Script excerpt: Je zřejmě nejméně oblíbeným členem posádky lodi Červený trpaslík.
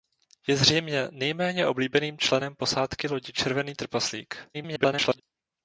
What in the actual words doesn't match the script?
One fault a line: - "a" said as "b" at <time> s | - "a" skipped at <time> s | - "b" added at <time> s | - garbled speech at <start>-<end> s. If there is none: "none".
- garbled speech at 4.5-5.2 s